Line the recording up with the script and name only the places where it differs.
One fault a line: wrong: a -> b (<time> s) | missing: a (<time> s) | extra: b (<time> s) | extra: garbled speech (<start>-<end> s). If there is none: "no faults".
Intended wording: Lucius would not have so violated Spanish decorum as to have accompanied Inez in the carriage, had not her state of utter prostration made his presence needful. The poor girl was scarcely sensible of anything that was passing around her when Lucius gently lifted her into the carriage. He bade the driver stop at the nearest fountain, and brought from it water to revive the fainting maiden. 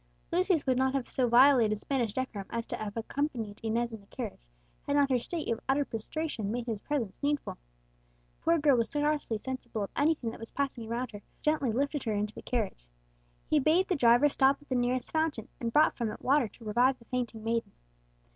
missing: when Lucius (11.2 s)